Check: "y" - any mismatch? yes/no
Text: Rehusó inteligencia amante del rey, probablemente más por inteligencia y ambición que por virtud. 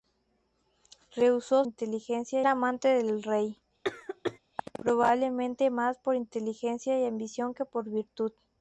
no